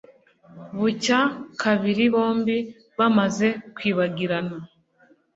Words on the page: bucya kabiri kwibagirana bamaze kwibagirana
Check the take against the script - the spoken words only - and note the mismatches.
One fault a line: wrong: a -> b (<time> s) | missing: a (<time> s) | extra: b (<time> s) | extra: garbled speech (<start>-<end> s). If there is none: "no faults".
wrong: kwibagirana -> bombi (2.1 s)